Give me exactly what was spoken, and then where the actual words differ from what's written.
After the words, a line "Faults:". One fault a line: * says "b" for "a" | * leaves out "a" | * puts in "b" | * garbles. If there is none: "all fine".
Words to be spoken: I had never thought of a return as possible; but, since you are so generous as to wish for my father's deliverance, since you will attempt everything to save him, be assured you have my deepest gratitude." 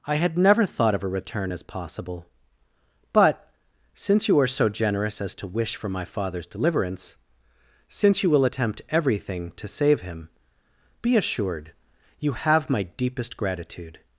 I had never thought of a return as possible; but, since you are so generous as to wish for my father's deliverance, since you will attempt everything to save him, be assured you have my deepest gratitude."
Faults:
all fine